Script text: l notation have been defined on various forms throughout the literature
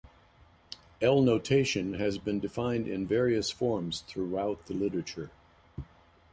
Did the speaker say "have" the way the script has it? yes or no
no